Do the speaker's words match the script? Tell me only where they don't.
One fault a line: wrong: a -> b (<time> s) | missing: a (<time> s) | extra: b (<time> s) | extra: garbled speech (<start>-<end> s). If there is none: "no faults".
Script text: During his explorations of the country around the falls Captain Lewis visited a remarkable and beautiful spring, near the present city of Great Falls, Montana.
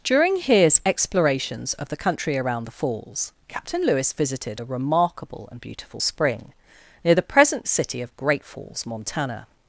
no faults